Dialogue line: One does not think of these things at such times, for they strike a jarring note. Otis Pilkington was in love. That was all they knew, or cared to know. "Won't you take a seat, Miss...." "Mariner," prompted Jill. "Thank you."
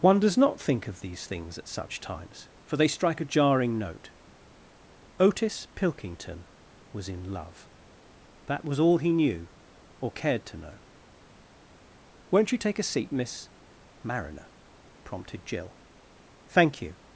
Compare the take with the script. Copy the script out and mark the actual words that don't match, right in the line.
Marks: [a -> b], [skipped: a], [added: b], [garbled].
One does not think of these things at such times, for they strike a jarring note. Otis Pilkington was in love. That was all [they -> he] knew, or cared to know. "Won't you take a seat, Miss...." "Mariner," prompted Jill. "Thank you."